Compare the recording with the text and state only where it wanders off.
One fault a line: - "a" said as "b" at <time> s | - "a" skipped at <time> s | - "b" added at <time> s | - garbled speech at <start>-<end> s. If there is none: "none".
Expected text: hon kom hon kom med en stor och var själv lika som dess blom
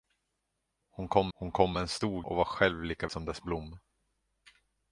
none